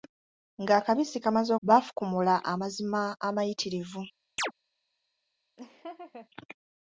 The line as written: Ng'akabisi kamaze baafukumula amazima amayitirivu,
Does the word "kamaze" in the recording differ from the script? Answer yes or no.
no